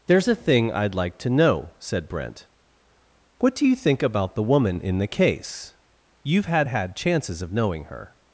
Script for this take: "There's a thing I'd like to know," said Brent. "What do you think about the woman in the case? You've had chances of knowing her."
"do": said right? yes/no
yes